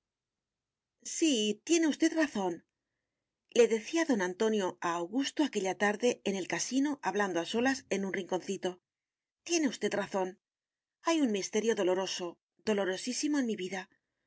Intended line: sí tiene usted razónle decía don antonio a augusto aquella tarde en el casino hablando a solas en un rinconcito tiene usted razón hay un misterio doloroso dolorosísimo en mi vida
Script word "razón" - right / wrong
right